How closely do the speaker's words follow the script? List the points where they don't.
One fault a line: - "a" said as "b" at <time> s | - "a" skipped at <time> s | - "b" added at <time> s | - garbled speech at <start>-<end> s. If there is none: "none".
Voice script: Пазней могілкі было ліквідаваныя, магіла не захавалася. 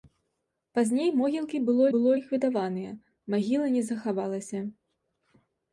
- "было" added at 1.9 s